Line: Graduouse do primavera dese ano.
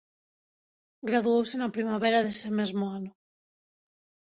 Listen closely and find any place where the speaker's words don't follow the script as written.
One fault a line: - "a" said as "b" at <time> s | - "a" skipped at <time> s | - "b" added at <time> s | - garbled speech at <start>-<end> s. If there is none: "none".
- "do" said as "na" at 1.6 s
- "mesmo" added at 2.6 s